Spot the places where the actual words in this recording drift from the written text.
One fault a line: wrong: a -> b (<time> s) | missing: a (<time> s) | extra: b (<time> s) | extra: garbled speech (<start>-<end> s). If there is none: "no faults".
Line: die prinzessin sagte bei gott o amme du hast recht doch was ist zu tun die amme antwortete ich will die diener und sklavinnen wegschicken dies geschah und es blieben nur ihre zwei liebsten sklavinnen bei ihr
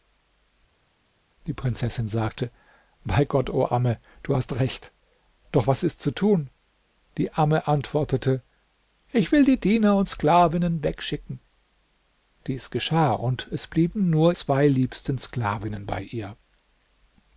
missing: ihre (14.3 s)